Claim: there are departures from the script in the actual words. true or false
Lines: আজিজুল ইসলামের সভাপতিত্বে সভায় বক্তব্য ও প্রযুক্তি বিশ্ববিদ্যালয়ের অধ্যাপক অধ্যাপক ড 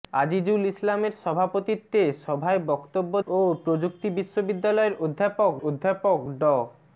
false